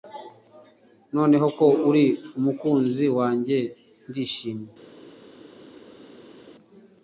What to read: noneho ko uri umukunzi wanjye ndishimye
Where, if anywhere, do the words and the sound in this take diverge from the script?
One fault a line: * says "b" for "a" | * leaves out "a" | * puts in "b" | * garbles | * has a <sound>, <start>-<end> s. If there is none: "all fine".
all fine